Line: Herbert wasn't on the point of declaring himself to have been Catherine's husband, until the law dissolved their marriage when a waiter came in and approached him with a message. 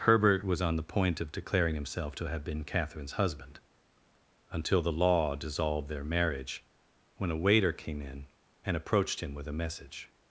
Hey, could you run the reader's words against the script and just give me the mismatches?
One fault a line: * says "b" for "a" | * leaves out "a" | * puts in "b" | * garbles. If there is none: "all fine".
* says "was" for "wasn't"